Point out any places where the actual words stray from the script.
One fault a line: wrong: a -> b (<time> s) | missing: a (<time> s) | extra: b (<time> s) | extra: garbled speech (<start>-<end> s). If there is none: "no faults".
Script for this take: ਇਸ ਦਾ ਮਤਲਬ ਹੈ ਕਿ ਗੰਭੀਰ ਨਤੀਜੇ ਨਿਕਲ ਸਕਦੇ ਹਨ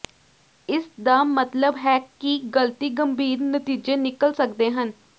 extra: ਗਲਤੀ (2.5 s)